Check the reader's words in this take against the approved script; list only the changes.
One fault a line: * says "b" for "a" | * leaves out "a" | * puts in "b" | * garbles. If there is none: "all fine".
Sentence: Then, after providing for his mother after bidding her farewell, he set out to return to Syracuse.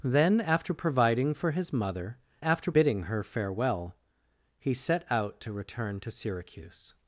all fine